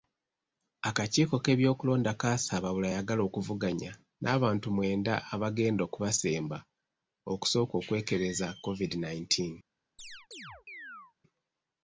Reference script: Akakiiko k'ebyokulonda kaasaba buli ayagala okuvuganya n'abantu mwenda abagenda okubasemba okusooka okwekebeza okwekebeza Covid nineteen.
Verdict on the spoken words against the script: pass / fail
fail